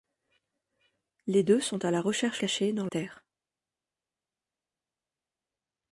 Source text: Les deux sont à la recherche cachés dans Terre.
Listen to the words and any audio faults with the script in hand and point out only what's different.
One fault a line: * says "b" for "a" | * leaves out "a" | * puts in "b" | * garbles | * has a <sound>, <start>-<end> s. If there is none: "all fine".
all fine